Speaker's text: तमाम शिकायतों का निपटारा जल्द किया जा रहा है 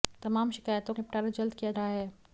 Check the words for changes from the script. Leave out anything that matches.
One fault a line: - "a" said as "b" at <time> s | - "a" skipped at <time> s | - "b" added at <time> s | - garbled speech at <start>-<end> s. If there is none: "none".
- "का" skipped at 0.9 s
- "जा" skipped at 1.7 s